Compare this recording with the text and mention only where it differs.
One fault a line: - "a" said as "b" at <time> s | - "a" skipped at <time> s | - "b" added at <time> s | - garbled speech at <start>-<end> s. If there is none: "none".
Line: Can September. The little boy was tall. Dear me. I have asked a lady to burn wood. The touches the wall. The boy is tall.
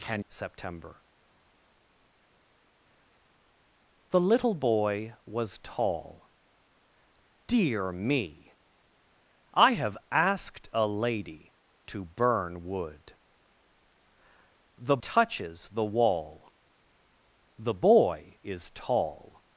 none